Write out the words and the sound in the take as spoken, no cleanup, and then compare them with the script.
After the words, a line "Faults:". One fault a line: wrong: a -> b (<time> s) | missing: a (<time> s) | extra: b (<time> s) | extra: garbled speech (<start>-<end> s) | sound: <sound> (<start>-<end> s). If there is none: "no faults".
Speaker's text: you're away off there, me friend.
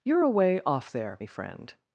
you're away off there, me friend.
Faults:
no faults